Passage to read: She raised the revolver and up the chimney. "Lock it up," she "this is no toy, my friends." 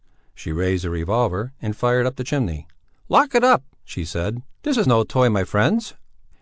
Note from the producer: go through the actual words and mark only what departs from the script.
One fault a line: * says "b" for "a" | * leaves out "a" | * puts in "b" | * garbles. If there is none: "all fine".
* puts in "fired"
* puts in "said"